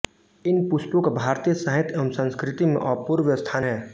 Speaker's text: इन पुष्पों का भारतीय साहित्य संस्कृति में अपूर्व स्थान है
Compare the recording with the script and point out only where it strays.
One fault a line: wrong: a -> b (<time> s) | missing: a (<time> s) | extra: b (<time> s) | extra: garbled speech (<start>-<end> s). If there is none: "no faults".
extra: एवं (1.9 s)